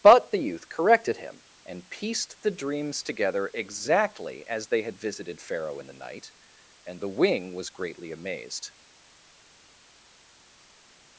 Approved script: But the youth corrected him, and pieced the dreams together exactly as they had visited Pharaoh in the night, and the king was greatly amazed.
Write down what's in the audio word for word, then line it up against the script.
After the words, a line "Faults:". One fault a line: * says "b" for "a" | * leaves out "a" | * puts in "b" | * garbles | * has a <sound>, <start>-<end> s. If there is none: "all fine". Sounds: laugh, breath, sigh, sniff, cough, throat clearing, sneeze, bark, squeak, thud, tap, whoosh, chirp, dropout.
But the youth corrected him, and pieced the dreams together exactly as they had visited Pharaoh in the night, and the wing was greatly amazed.
Faults:
* says "wing" for "king"